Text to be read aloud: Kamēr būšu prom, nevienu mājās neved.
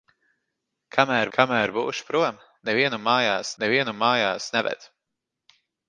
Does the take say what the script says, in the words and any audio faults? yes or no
no